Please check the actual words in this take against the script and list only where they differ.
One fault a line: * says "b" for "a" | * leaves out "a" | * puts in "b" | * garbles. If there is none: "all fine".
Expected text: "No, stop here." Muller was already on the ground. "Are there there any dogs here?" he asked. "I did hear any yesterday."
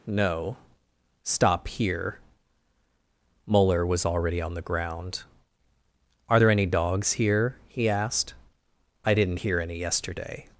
* leaves out "there"
* says "didn't" for "did"